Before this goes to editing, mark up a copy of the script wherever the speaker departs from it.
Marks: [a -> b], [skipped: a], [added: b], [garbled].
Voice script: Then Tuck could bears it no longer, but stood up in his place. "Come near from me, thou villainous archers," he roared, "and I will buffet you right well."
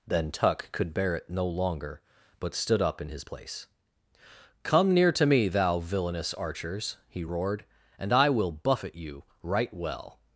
Then Tuck could [bears -> bear] it no longer, but stood up in his place. "Come near [from -> to] me, thou villainous archers," he roared, "and I will buffet you right well."